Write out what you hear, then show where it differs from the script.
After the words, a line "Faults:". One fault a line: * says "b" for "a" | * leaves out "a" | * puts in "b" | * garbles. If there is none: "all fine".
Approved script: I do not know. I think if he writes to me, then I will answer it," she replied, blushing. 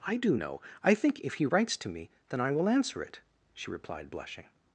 I do know. I think if he writes to me, then I will answer it," she replied, blushing.
Faults:
* leaves out "not"